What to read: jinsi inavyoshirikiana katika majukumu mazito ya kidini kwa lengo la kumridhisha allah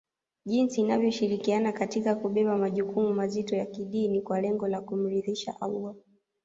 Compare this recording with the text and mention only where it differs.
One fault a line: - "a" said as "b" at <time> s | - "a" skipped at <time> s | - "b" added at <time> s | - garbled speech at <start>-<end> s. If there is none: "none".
- "kubeba" added at 2.1 s